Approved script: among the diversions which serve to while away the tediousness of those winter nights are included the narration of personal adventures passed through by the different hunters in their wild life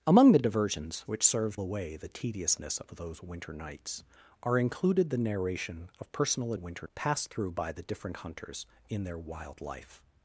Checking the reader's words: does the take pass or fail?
fail